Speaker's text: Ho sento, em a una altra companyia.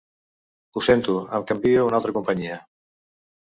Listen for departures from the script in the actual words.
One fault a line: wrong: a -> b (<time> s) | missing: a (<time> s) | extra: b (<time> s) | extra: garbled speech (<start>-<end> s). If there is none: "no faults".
extra: canvio (1.5 s)